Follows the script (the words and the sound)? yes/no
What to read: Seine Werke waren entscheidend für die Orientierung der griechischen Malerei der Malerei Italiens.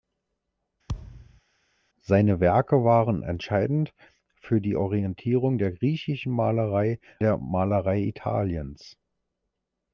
no